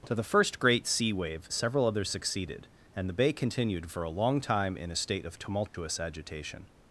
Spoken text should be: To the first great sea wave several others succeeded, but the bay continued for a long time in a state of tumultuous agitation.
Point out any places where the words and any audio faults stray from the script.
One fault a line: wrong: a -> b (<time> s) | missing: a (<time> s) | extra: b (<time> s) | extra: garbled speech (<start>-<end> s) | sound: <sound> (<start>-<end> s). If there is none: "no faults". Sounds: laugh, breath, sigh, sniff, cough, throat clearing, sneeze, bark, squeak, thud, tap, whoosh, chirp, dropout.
wrong: but -> and (2.9 s)
sound: dropout (5.7-5.7 s)